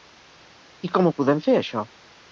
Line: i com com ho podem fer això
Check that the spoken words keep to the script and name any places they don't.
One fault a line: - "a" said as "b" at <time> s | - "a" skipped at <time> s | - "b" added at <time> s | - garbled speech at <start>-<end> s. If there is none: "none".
- "com" skipped at 1.1 s